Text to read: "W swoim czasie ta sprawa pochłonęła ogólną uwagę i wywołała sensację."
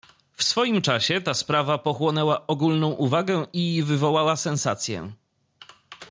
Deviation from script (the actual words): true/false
false